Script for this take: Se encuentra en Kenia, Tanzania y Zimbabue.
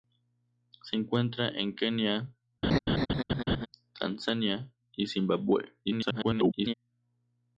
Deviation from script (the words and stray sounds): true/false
true